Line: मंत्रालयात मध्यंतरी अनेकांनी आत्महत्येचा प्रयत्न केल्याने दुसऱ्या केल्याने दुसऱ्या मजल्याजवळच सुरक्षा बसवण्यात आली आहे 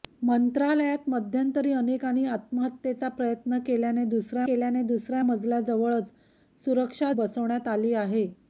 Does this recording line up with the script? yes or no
yes